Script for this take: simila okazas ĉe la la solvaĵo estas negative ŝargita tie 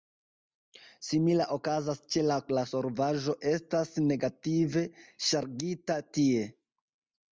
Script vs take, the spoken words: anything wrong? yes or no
no